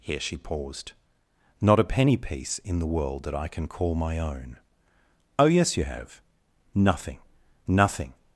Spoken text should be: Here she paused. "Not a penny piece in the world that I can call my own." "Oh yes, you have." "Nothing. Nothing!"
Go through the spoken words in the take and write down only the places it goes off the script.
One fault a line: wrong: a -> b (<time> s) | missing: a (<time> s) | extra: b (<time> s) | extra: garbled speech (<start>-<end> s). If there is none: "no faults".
no faults